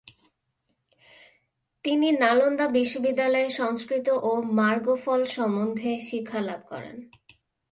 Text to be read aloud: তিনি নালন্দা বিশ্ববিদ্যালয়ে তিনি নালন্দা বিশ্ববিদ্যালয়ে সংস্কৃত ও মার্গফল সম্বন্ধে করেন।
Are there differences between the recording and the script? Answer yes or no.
yes